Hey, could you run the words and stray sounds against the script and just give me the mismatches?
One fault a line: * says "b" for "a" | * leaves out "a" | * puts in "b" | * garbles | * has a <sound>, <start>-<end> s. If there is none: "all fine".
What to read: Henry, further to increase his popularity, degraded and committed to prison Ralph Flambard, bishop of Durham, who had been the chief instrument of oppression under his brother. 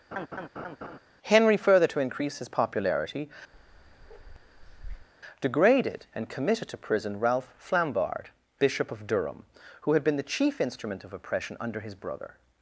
* has a laugh, 0.1-1.0 s
* has a bark, 3.5-5.1 s